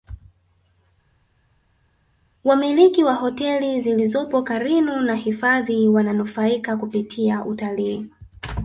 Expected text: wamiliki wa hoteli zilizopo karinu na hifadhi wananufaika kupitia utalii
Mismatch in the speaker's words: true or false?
false